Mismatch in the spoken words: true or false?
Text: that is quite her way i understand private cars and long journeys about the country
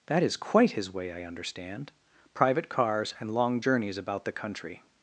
true